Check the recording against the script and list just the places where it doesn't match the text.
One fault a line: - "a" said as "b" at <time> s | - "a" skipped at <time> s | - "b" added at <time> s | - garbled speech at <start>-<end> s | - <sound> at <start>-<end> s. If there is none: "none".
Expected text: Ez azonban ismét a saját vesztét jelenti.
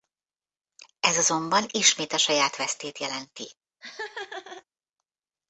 - laugh at 3.8-4.6 s